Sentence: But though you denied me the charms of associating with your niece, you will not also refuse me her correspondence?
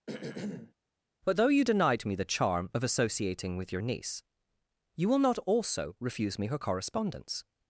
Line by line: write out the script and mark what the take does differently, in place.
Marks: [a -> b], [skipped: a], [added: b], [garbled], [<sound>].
[throat clearing] But though you denied me the [charms -> charm] of associating with your niece, you will not also refuse me her correspondence?